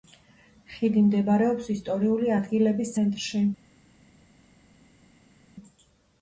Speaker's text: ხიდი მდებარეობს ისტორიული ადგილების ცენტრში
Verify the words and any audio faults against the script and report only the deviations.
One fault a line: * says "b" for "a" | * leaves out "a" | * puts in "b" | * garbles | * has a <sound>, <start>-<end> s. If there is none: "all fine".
all fine